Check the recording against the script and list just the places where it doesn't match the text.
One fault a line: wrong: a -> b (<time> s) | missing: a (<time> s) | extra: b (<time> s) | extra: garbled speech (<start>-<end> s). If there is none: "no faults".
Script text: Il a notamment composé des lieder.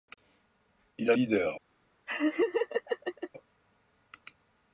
missing: notamment composé des (1.2 s)